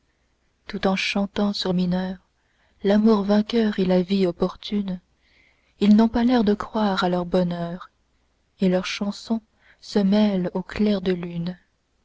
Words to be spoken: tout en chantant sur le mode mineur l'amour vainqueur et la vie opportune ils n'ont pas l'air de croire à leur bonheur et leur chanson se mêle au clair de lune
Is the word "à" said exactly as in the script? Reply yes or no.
yes